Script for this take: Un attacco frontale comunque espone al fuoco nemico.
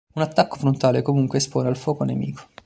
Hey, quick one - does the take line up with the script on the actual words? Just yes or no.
yes